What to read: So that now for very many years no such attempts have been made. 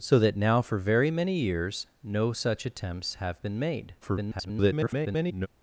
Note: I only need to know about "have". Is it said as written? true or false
true